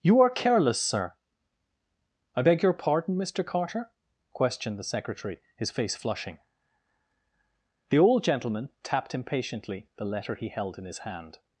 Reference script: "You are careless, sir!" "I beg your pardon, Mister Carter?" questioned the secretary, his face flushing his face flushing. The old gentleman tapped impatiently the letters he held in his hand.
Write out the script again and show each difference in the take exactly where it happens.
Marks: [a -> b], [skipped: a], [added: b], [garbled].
"You are careless, sir!" "I beg your pardon, Mister Carter?" questioned the secretary, his face flushing [skipped: his face flushing.] The old gentleman tapped impatiently the [letters -> letter] he held in his hand.